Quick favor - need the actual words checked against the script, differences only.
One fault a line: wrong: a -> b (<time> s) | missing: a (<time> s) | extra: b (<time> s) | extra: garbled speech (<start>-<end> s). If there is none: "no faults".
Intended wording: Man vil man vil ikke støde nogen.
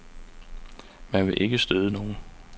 missing: man vil (1.4 s)